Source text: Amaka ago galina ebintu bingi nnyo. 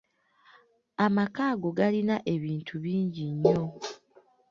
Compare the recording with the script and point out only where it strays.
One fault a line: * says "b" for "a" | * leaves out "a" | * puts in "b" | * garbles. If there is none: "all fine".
all fine